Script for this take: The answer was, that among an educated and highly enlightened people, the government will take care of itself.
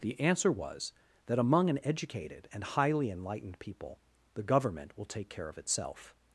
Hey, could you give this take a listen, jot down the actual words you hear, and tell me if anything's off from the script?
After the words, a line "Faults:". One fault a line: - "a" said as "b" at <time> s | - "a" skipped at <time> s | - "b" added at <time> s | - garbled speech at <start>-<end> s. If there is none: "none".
The answer was, that among an educated and highly enlightened people, the government will take care of itself.
Faults:
none